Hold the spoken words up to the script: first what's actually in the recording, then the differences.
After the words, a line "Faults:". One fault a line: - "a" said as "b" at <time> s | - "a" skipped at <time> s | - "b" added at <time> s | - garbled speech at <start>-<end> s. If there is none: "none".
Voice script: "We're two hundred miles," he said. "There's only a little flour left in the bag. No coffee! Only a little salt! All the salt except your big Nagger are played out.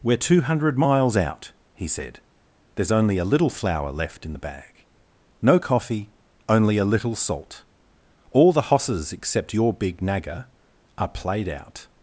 "We're two hundred miles out," he said. "There's only a little flour left in the bag. No coffee! Only a little salt! All the hosses except your big Nagger are played out.
Faults:
- "out" added at 1.1 s
- "salt" said as "hosses" at 8.7 s